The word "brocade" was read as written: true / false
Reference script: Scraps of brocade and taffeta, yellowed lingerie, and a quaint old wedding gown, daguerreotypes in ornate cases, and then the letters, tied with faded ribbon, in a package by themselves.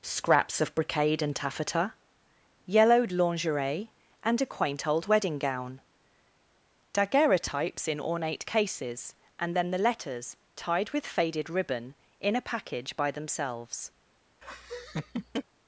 true